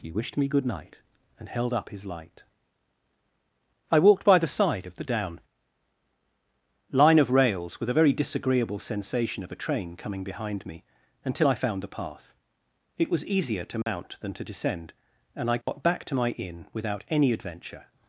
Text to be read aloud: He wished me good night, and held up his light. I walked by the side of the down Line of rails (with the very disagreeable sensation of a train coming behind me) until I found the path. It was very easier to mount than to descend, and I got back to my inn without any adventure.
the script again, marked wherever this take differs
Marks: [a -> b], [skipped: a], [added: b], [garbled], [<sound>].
He wished me good night, and held up his light. I walked by the side of the down Line of rails (with [the -> a] very disagreeable sensation of a train coming behind me) until I found the path. It was [skipped: very] easier to mount [dropout] than to descend, and I got [dropout] back to my inn without any adventure.